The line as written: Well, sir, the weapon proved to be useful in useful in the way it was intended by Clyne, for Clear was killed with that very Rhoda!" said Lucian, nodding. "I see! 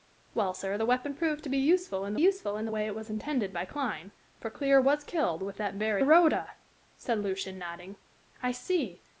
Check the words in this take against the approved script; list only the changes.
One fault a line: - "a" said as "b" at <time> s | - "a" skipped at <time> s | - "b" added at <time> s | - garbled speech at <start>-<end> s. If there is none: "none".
none